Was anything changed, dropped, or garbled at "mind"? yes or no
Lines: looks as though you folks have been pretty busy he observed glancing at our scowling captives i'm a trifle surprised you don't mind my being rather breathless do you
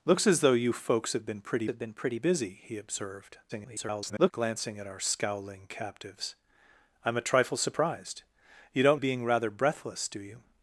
yes